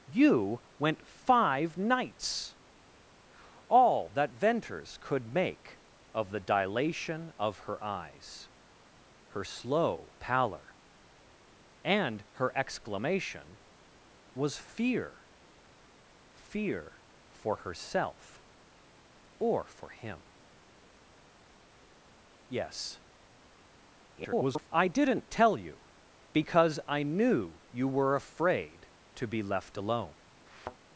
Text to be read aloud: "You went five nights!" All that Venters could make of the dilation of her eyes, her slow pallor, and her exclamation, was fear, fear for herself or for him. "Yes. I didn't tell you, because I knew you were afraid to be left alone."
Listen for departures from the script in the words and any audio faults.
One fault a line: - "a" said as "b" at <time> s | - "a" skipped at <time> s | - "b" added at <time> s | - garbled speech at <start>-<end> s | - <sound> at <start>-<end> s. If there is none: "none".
- garbled speech at 24.1-24.7 s
- thud at 30.5-30.8 s